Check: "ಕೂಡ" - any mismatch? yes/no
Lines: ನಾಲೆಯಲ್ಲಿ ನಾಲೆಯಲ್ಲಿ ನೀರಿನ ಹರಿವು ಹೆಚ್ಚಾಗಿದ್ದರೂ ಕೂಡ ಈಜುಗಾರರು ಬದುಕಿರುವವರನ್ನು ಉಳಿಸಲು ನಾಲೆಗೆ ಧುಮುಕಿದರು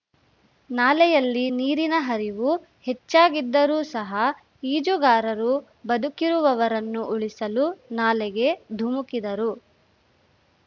yes